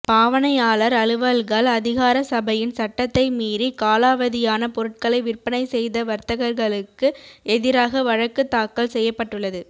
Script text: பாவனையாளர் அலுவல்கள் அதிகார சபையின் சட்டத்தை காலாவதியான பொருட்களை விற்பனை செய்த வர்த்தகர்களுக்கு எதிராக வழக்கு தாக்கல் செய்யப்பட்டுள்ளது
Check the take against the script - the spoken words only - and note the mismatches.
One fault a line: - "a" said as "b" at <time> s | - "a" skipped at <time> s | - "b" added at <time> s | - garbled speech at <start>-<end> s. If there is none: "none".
- "மீறி" added at 3.3 s